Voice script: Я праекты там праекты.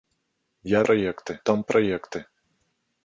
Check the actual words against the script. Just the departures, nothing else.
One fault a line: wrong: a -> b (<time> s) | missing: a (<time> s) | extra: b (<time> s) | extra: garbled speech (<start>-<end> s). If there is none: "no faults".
no faults